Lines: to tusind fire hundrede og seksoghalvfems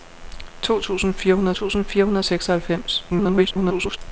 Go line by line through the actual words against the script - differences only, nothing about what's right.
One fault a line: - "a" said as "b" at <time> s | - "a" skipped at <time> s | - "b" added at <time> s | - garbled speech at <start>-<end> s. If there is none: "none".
- "tusind fire hundrede" added at 1.5 s
- garbled speech at 3.1-4.0 s